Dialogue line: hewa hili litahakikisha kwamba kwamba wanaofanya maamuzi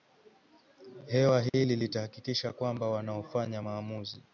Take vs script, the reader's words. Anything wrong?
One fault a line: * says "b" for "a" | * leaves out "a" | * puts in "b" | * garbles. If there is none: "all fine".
* leaves out "kwamba"